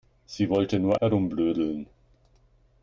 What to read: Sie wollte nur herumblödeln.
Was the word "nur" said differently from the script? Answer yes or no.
no